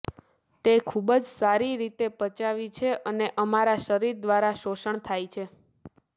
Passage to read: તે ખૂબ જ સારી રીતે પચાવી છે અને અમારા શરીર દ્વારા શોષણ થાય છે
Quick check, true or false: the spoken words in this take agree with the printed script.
true